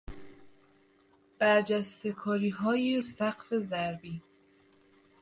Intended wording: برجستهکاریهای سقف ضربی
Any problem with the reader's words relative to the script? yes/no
no